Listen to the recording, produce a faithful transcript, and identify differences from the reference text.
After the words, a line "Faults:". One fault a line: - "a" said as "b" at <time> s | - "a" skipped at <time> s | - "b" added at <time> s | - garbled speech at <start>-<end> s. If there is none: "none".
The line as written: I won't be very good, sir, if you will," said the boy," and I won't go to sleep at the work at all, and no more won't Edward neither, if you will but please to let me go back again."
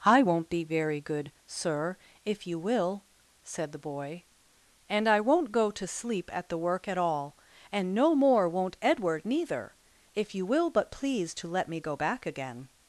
I won't be very good, sir, if you will," said the boy," and I won't go to sleep at the work at all, and no more won't Edward neither, if you will but please to let me go back again."
Faults:
none